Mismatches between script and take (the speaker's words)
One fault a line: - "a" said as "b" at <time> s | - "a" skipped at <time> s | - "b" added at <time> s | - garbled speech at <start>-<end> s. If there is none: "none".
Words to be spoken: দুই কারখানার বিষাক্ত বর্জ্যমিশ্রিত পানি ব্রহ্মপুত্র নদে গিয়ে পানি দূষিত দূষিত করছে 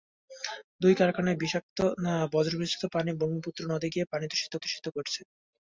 none